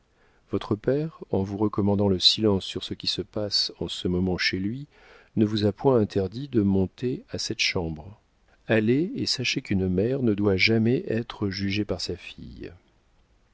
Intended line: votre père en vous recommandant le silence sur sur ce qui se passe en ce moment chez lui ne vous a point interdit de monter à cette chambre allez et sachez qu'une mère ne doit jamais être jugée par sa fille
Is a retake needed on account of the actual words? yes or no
yes